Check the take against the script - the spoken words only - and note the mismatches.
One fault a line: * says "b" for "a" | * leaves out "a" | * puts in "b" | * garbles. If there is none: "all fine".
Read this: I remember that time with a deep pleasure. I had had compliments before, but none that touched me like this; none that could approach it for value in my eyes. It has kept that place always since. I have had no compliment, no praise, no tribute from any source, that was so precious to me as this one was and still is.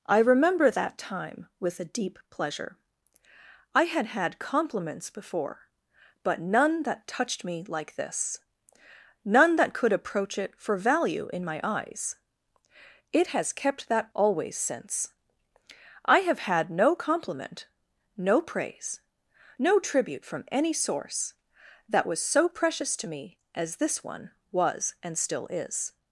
* leaves out "place"